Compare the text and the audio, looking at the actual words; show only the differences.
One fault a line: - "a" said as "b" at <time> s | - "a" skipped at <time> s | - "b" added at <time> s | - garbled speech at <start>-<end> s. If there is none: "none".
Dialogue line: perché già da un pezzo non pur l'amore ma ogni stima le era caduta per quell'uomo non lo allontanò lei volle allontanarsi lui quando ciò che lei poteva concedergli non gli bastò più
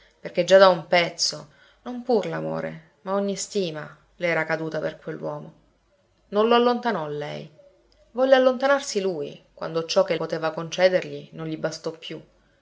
- "lei" skipped at 10.2 s